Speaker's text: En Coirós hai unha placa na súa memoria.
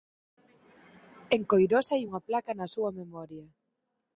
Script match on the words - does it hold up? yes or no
yes